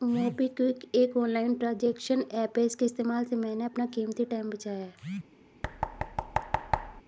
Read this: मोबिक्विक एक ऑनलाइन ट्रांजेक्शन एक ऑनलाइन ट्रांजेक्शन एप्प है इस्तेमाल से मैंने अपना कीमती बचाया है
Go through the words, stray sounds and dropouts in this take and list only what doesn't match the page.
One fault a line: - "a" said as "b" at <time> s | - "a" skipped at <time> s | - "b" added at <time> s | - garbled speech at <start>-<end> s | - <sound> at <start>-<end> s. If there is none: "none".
- "एक ऑनलाइन ट्रांजेक्शन" skipped at 2.2 s
- "इसके" added at 2.6 s
- "टाइम" added at 4.2 s
- thud at 5.6-7.0 s